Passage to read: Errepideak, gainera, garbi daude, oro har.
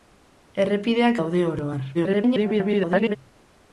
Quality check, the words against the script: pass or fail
fail